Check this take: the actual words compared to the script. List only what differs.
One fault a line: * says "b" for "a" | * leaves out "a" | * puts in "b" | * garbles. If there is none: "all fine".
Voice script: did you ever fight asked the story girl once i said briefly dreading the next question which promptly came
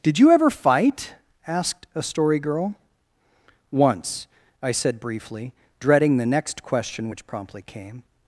* says "a" for "the"